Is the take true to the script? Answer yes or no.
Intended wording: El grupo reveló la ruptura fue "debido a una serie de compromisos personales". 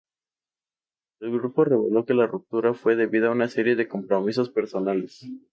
no